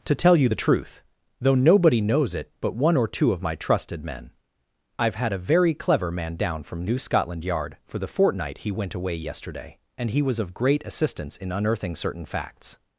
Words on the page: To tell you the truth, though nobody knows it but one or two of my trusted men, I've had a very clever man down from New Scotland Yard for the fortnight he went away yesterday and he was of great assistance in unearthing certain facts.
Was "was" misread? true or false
false